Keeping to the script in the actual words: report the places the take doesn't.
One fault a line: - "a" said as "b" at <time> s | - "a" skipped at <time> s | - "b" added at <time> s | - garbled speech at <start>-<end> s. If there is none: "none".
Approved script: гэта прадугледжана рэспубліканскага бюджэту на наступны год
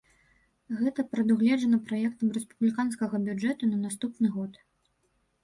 - "праектам" added at 1.9 s